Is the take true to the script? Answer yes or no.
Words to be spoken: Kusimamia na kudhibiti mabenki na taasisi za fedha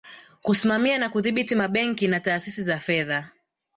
yes